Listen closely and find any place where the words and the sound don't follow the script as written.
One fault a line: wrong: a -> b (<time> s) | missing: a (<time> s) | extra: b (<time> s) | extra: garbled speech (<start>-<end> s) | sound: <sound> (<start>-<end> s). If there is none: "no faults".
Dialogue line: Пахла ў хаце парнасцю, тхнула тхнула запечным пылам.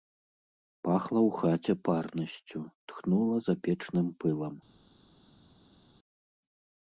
missing: тхнула (3.4 s)